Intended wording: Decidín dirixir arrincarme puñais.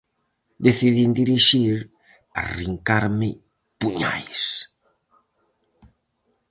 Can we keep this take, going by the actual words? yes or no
yes